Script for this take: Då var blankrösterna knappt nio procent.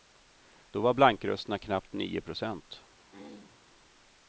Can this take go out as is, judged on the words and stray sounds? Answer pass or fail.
fail